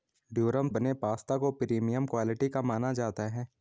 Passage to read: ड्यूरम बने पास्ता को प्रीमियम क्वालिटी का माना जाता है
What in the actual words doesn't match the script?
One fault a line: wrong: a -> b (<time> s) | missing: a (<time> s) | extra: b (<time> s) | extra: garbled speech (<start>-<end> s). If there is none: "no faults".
no faults